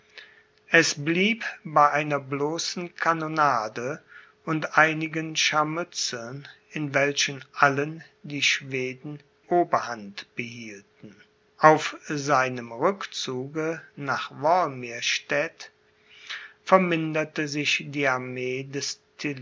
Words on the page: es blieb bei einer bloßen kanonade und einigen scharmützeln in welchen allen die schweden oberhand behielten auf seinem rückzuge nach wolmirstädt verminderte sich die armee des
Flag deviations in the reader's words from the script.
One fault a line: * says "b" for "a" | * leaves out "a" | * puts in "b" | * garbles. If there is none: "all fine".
all fine